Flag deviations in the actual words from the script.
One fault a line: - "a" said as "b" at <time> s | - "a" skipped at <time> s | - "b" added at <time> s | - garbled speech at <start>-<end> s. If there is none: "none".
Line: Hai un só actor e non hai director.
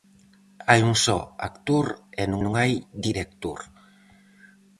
- "non" added at 2.4 s